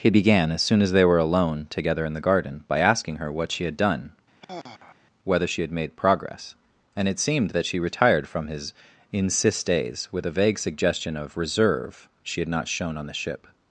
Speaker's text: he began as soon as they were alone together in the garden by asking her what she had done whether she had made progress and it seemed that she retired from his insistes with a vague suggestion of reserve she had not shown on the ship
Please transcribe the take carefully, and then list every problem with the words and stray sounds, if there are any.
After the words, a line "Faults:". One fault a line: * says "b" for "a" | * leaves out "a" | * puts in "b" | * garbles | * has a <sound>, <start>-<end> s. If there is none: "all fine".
he began as soon as they were alone together in the garden by asking her what she had done whether she had made progress and it seemed that she retired from his insistes with a vague suggestion of reserve she had not shown on the ship
Faults:
* has a sigh, 4.4-5.0 s